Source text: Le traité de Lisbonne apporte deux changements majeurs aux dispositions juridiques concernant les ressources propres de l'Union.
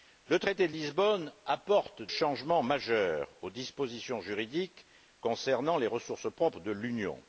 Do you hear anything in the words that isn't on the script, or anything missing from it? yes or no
yes